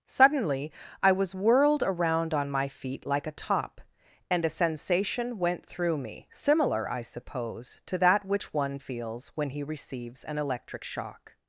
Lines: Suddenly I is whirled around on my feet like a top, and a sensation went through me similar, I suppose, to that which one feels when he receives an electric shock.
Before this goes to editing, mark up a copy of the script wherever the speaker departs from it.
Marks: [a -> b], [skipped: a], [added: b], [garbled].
Suddenly I [is -> was] whirled around on my feet like a top, and a sensation went through me similar, I suppose, to that which one feels when he receives an electric shock.